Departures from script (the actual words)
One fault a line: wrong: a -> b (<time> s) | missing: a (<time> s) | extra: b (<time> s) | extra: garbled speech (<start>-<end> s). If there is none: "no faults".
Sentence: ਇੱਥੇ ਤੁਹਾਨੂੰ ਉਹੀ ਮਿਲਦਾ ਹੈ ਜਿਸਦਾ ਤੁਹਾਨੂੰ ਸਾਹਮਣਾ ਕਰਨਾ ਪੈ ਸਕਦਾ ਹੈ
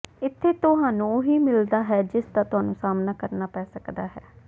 no faults